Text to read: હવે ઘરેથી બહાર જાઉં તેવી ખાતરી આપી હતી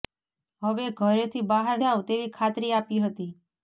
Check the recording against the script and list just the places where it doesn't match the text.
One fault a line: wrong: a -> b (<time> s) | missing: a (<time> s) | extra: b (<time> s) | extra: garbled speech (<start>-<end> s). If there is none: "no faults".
no faults